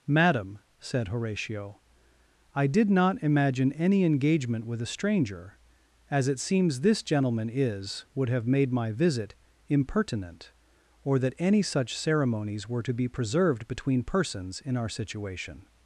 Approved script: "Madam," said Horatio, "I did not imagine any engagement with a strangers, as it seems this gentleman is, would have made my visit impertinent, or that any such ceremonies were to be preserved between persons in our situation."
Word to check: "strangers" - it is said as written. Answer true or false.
false